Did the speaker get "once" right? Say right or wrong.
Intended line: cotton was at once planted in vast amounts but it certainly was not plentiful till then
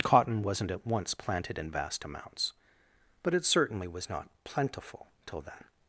right